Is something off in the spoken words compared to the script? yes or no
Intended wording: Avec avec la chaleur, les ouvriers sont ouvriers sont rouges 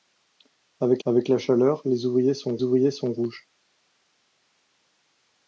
no